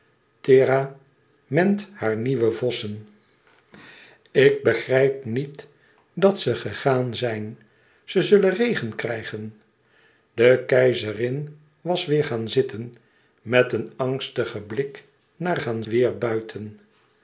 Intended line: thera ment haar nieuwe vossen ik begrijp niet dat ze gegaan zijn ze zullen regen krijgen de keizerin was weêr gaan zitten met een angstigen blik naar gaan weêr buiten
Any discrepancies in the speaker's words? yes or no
no